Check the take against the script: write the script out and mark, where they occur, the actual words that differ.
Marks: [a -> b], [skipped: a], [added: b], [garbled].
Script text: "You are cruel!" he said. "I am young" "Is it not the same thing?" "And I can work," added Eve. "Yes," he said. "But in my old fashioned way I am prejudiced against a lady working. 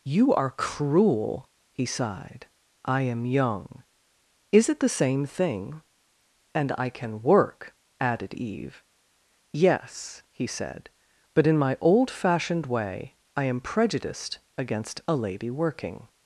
"You are cruel!" he [said. -> sighed] "I am young" "Is it [skipped: not] the same thing?" "And I can work," added Eve. "Yes," he said. "But in my old fashioned way I am prejudiced against a lady working.